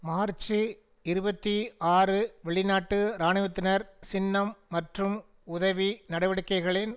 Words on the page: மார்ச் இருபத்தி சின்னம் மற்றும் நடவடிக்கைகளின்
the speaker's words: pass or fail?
fail